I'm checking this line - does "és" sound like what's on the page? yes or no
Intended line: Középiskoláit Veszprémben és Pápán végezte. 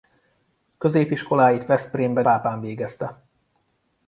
no